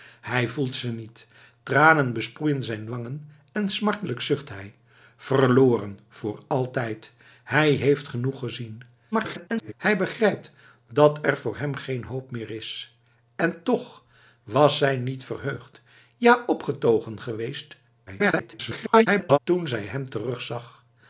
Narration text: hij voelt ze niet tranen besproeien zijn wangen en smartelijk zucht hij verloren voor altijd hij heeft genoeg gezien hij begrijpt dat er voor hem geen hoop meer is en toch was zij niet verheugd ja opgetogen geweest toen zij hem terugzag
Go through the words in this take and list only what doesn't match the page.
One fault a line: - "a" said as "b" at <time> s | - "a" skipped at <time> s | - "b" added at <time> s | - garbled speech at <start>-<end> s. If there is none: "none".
- garbled speech at 9.1-9.7 s
- garbled speech at 18.1-19.4 s